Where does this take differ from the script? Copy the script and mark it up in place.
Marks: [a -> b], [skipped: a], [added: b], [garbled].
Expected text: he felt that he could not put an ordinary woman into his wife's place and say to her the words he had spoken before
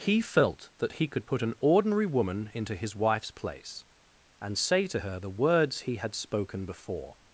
he felt that he could [skipped: not] put an ordinary woman into his wife's place and say to her the words he had spoken before